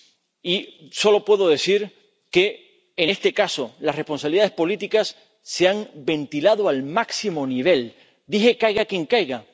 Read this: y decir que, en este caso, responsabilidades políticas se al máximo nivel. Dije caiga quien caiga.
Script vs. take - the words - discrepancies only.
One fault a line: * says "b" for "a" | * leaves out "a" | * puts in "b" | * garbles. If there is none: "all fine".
* puts in "solo puedo"
* puts in "las"
* puts in "han ventilado"